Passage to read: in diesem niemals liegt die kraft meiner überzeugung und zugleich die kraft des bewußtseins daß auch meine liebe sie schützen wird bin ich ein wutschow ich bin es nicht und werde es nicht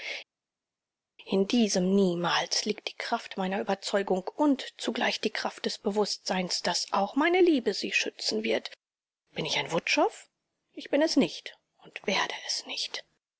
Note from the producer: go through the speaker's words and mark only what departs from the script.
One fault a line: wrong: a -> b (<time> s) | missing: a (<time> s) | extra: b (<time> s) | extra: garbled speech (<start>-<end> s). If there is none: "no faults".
no faults